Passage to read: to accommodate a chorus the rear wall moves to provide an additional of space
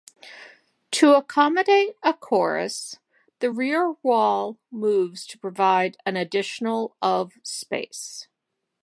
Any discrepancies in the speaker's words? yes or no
no